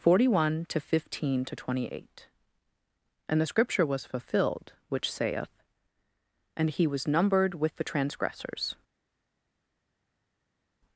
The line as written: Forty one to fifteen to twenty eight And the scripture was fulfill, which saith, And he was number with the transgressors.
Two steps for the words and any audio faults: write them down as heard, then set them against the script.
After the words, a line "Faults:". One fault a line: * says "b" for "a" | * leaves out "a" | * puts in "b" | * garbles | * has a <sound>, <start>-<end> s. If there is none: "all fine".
Forty one to fifteen to twenty eight And the scripture was fulfilled, which saith, And he was numbered with the transgressors.
Faults:
* says "fulfilled" for "fulfill"
* says "numbered" for "number"